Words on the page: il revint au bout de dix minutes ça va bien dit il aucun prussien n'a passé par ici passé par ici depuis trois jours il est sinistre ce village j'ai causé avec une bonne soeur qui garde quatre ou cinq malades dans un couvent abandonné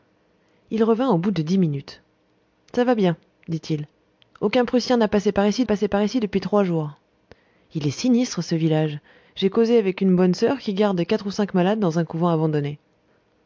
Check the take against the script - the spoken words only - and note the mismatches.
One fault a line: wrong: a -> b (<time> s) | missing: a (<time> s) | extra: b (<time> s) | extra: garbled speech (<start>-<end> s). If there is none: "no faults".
no faults